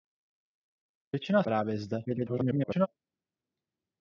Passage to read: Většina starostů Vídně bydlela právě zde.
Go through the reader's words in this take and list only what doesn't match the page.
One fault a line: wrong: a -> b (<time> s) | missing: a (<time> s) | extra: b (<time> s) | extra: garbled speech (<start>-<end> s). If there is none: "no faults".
missing: starostů Vídně bydlela (1.4 s)
extra: garbled speech (2.1-2.9 s)